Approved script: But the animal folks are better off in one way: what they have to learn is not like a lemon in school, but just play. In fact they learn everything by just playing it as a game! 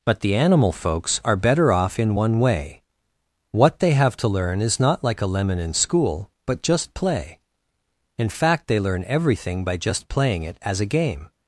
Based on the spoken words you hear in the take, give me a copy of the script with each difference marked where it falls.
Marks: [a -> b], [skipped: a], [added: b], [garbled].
But the animal folks are better off in one way: what they have to learn is not like a lemon in school, but just play. In fact they learn everything by just playing it as a game!